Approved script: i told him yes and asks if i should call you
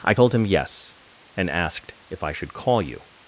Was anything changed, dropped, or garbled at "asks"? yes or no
yes